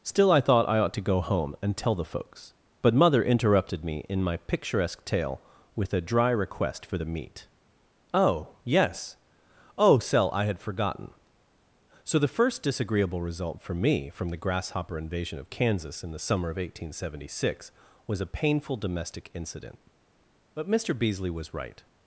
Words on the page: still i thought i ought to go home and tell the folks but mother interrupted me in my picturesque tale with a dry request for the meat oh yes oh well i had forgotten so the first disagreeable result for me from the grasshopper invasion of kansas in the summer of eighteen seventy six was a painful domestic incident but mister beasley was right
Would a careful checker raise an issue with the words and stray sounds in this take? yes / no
yes